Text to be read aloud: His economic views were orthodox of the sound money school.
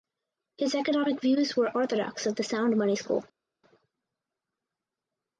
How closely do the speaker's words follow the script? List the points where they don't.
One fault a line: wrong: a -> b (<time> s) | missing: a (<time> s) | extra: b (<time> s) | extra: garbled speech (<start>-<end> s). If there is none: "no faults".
no faults